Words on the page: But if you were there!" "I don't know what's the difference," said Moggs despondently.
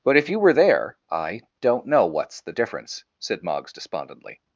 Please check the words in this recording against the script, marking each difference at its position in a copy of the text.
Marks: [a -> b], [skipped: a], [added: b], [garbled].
But if you were there!" "I don't know what's the difference," said Moggs despondently.